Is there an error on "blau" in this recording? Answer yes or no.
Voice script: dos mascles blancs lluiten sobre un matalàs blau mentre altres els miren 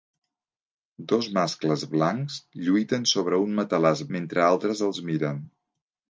yes